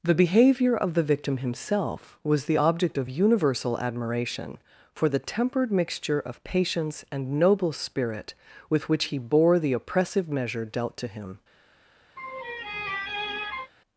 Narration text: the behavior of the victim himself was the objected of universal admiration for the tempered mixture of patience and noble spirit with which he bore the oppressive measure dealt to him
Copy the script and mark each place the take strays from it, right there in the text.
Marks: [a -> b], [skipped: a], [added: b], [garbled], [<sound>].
the behavior of the victim himself was the [objected -> object] of universal admiration for the tempered mixture of patience and noble spirit with which he bore the oppressive measure dealt to him [laugh]